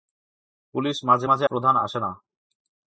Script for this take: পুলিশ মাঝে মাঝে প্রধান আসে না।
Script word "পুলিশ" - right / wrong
right